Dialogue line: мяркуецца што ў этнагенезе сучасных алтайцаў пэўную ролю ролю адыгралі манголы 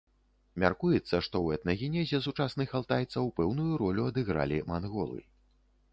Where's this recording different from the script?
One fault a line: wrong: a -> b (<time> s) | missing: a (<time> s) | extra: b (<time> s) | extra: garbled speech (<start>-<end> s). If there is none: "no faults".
missing: ролю (4.1 s)